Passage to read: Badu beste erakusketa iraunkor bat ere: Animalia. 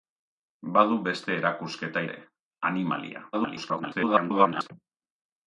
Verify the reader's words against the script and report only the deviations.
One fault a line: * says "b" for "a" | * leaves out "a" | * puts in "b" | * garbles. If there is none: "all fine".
* leaves out "iraunkor bat"
* garbles